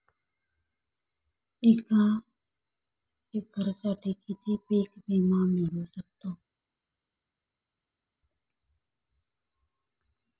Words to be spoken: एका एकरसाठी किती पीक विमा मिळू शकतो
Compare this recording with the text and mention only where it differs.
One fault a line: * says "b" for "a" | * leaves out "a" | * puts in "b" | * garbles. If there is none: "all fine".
all fine